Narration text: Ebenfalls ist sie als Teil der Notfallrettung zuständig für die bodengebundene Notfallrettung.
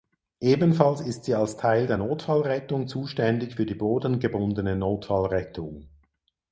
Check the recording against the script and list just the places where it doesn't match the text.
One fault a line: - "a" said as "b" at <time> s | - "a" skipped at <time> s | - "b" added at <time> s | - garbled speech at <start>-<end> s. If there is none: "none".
none